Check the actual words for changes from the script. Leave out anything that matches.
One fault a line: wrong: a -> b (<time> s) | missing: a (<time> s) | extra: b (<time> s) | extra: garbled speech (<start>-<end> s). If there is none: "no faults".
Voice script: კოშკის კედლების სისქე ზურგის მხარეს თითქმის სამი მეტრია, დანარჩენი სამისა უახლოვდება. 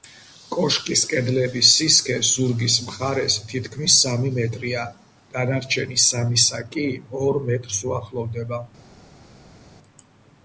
extra: კი ორ მეტრს (6.8 s)